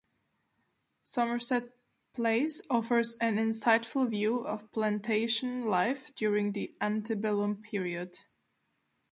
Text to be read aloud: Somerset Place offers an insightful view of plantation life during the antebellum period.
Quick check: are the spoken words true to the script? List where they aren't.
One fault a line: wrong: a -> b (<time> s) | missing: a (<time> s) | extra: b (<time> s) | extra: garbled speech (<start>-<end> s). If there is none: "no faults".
no faults